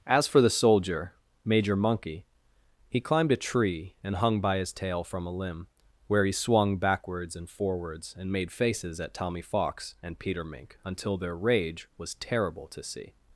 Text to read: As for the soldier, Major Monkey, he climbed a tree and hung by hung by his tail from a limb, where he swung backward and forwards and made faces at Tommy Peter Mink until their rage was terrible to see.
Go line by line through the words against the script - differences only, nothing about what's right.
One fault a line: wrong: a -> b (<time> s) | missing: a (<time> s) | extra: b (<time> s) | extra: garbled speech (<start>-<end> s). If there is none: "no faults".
missing: hung by (4.6 s)
wrong: backward -> backwards (6.8 s)
extra: Fox and (9.4 s)